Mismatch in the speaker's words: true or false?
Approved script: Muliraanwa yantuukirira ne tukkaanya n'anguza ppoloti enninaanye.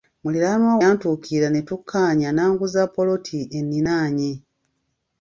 false